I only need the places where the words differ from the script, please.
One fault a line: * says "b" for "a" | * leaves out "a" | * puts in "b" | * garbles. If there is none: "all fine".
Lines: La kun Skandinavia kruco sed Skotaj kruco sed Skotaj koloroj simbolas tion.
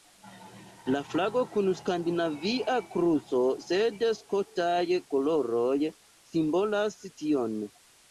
* puts in "flago"
* leaves out "kruco sed Skotaj"